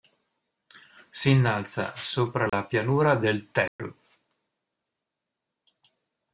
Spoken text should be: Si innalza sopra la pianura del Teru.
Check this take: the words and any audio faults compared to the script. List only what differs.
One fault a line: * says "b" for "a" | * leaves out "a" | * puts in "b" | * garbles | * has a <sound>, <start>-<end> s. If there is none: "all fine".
* has a dropout, 2.5-2.5 s
* has a dropout, 3.7-3.8 s